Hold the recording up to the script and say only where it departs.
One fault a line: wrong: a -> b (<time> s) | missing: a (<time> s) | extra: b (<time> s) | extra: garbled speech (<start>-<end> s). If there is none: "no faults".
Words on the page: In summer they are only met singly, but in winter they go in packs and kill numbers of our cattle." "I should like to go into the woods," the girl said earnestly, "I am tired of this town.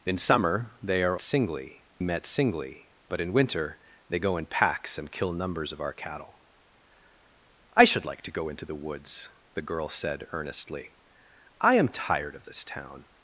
wrong: only -> singly (1.2 s)